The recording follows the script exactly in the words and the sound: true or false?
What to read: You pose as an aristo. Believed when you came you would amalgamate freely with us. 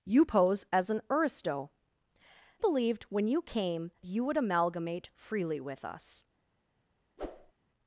false